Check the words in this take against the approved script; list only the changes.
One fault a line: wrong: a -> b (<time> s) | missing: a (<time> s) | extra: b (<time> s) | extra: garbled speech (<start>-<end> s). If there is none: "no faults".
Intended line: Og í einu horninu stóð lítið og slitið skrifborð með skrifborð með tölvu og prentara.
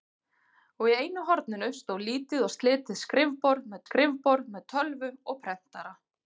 no faults